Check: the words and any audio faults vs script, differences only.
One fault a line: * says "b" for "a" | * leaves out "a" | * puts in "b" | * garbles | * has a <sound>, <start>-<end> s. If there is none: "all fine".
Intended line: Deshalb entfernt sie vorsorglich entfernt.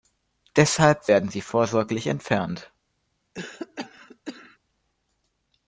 * says "werden" for "entfernt"
* has a cough, 3.3-4.6 s